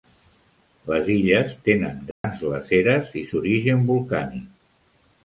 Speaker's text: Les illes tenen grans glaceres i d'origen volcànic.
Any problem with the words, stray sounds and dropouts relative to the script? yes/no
yes